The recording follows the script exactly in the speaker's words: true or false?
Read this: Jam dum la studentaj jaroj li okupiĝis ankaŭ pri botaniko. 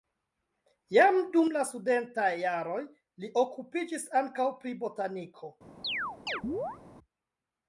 true